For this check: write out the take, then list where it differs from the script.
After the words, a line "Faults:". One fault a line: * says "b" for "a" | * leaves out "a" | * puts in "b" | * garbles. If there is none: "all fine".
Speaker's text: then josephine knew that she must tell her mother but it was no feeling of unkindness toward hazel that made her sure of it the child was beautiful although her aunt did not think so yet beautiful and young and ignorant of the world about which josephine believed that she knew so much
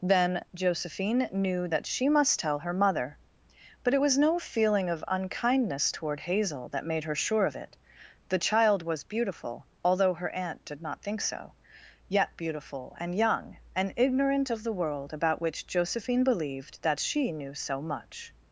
then josephine knew that she must tell her mother but it was no feeling of unkindness toward hazel that made her sure of it the child was beautiful although her aunt did not think so yet beautiful and young and ignorant of the world about which josephine believed that she knew so much
Faults:
all fine